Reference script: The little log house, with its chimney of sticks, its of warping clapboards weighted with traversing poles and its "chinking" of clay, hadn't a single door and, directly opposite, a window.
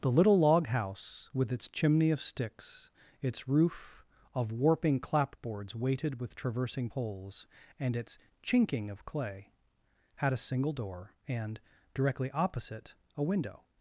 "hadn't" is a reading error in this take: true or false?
true